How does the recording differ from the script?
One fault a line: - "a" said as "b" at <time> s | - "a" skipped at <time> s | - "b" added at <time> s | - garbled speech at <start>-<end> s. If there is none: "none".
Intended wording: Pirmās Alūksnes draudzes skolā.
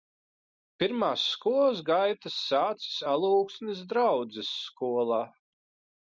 - "skolas gaitas sācis" added at 1.3 s